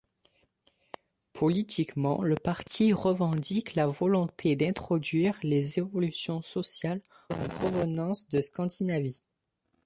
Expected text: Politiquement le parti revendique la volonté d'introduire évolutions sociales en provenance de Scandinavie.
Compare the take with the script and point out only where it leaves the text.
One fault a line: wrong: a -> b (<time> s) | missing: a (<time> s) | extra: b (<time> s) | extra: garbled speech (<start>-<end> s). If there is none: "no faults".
extra: les (5.4 s)